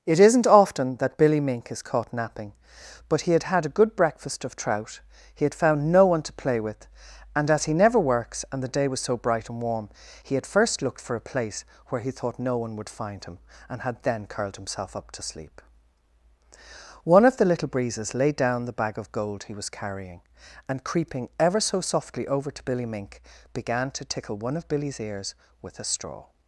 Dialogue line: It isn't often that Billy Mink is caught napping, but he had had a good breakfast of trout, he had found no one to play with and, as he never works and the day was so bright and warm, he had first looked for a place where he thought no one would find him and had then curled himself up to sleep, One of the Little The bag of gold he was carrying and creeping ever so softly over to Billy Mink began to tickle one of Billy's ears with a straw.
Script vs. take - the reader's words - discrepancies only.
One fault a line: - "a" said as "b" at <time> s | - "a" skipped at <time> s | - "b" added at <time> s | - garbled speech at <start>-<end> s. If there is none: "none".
- "Breezes laid down" added at 17.7 s